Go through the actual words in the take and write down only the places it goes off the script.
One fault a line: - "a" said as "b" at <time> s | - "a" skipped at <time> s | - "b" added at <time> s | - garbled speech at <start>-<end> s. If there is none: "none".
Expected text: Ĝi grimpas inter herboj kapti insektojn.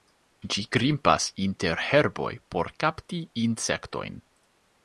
- "por" added at 2.5 s